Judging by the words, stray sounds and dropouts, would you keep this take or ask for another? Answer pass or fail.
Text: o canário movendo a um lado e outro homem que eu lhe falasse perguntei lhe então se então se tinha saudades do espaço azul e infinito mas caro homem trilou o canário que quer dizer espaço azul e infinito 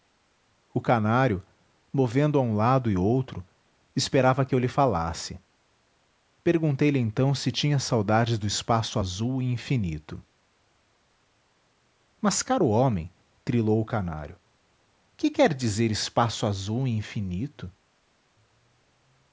fail